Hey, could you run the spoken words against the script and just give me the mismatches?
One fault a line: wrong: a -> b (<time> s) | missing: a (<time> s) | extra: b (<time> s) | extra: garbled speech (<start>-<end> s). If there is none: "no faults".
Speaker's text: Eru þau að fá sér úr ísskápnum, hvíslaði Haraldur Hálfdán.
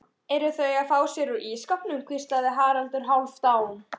no faults